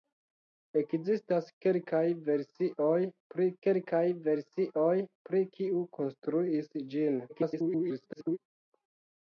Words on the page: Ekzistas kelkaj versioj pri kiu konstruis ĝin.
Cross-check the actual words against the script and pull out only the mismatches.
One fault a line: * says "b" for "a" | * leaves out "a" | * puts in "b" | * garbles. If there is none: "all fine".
* puts in "kelkaj versioj pri"
* garbles